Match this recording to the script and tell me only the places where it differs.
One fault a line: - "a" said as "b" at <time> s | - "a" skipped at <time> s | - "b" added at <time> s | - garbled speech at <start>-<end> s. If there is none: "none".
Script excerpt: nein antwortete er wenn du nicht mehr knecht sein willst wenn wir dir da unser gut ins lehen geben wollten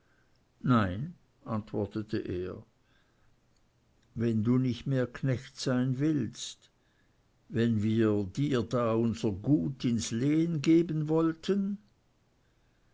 none